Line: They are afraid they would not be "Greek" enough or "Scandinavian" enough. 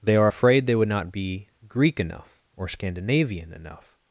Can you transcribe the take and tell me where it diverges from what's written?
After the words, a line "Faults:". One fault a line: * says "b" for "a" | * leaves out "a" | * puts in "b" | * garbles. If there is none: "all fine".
They are afraid they would not be "Greek" enough or "Scandinavian" enough.
Faults:
all fine